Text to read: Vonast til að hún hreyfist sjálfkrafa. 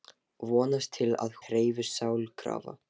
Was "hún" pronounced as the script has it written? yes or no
no